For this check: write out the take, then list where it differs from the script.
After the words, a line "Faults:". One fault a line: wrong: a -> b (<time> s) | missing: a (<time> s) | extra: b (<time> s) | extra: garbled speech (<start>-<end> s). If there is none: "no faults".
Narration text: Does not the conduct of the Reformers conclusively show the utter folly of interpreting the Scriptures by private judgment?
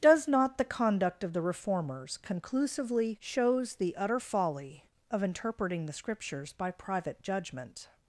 Does not the conduct of the Reformers conclusively shows the utter folly of interpreting the Scriptures by private judgment?
Faults:
wrong: show -> shows (3.2 s)